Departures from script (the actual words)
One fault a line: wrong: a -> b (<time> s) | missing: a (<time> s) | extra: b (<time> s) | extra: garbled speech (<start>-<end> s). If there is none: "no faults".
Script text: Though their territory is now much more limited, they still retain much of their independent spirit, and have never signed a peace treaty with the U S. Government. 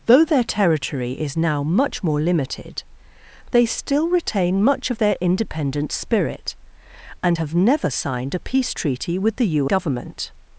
missing: S (9.7 s)